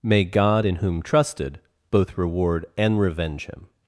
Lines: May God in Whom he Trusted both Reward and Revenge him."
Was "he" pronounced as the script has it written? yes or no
no